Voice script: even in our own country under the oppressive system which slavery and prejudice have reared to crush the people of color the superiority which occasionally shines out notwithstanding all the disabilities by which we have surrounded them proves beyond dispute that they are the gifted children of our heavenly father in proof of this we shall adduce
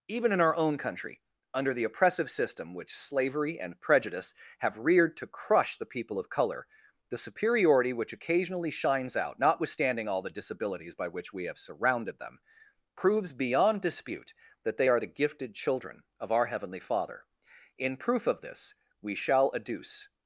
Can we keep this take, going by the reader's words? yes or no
yes